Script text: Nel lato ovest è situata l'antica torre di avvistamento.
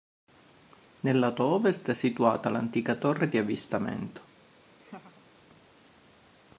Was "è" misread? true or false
false